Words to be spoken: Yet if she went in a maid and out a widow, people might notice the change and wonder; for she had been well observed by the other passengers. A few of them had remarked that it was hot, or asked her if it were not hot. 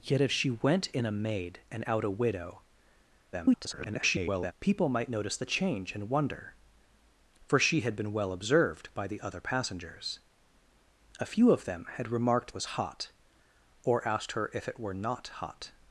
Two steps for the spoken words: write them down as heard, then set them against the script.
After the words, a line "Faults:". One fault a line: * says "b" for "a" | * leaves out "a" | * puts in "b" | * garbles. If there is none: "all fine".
Yet if she went in a maid and out a widow, [garbled] people might notice the change and wonder; for she had been well observed by the other passengers. A few of them had remarked was hot, or asked her if it were not hot.
Faults:
* garbles
* leaves out "that it"